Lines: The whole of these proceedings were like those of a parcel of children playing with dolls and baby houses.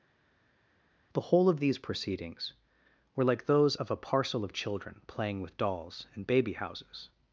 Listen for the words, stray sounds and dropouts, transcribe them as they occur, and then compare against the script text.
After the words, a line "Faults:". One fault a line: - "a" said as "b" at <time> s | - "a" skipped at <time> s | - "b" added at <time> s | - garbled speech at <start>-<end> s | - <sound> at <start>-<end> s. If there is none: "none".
The whole of these proceedings were like those of a parcel of children playing with dolls and baby houses.
Faults:
none